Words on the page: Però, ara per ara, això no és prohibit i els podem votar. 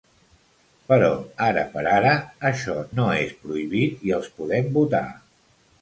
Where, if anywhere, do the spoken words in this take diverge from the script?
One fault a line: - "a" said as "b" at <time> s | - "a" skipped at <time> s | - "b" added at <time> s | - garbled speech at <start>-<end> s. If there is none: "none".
none